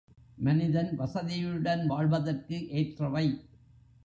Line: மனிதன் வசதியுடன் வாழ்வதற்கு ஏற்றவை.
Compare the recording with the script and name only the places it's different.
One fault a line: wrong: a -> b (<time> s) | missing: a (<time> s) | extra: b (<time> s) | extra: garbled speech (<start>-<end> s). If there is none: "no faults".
no faults